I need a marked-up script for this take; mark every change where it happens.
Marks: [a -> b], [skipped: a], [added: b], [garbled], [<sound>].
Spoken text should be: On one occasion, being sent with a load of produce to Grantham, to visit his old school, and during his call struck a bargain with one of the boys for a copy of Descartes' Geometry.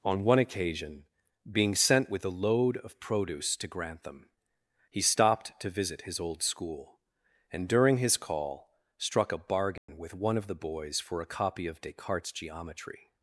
On one occasion, being sent with a load of produce to Grantham, [added: he stopped] to visit his old school, and during his call struck a bargain [dropout] with one of the boys for a copy of Descartes' Geometry.